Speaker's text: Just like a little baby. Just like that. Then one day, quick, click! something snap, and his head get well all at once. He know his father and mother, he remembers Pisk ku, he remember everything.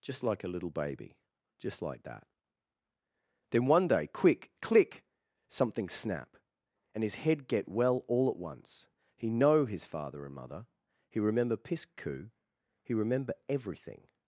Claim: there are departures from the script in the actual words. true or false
true